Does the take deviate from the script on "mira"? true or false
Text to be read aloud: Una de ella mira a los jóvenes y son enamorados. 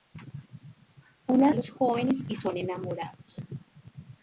true